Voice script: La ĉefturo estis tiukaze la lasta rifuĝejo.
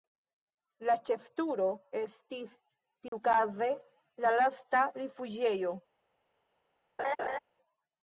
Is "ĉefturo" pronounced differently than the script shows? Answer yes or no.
no